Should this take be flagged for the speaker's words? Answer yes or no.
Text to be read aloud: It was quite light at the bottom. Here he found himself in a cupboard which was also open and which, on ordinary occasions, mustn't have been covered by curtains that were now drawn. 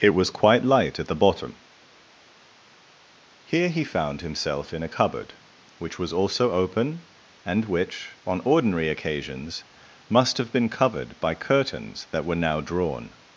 yes